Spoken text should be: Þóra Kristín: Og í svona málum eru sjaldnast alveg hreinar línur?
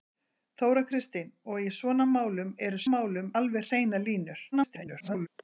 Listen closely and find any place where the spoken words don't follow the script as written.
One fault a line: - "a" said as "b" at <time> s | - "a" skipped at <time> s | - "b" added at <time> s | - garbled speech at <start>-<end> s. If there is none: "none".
- "sjaldnast" said as "málum" at 2.9 s
- garbled speech at 4.5-5.3 s